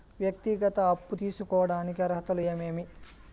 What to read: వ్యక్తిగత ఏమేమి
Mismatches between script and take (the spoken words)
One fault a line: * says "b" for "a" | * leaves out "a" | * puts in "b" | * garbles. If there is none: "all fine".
* puts in "అప్పు తీసుకోడానికి అర్హతలు"